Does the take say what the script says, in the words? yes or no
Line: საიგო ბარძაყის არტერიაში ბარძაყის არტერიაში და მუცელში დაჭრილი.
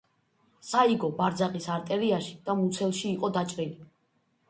no